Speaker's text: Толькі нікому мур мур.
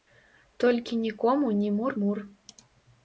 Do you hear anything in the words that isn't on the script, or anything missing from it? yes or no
yes